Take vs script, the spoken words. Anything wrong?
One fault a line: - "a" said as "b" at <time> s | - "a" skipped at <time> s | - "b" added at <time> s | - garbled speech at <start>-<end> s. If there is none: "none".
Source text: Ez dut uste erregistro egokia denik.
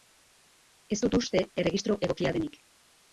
none